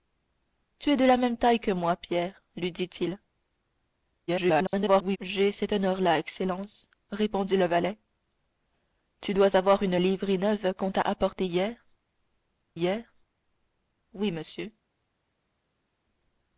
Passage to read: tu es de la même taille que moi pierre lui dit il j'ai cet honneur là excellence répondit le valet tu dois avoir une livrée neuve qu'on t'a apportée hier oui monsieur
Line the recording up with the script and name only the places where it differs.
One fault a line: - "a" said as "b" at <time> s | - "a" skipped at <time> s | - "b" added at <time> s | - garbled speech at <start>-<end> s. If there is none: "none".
- garbled speech at 4.3-5.2 s
- "hier" added at 12.7 s